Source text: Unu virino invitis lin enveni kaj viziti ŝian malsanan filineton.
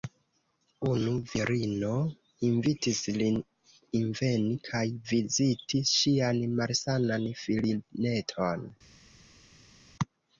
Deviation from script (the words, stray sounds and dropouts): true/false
false